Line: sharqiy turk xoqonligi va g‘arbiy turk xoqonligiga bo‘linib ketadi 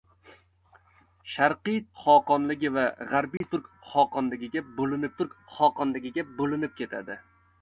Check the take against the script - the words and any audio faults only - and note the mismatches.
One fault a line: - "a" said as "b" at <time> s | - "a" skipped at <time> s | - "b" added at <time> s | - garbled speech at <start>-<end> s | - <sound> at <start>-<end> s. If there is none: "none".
- "turk" skipped at 1.8 s
- dropout at 3.4-3.4 s
- "turk xoqonligiga bo‘linib" added at 5.2 s